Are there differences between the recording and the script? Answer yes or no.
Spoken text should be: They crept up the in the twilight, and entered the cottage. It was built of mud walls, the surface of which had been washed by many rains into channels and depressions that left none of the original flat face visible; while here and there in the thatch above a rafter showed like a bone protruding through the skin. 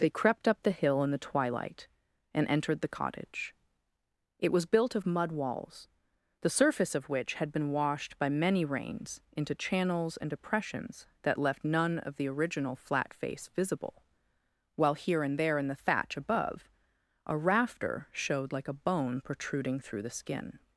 yes